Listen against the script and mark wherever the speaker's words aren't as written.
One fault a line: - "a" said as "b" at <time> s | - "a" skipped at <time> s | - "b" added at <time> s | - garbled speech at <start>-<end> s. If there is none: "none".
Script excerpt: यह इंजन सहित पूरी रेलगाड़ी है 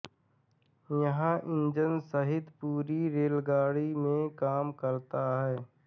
- "में काम करता" added at 4.0 s